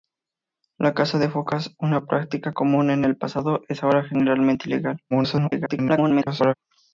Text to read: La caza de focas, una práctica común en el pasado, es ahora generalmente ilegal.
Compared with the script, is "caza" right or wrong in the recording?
right